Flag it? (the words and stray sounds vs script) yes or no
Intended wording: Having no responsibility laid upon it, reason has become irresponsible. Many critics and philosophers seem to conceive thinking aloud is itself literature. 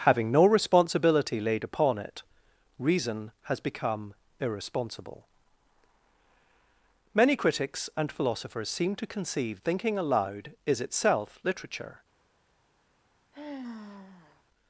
yes